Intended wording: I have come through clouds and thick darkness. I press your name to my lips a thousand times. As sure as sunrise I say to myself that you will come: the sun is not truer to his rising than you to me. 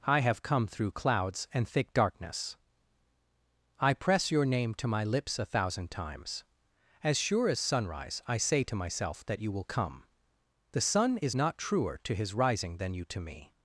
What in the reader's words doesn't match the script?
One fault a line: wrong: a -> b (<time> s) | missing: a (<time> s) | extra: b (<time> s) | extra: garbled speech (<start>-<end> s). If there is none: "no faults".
no faults